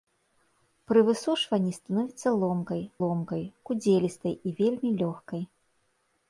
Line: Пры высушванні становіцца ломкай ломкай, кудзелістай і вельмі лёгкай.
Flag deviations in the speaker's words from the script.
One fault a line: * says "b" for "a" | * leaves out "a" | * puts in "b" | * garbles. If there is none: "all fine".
all fine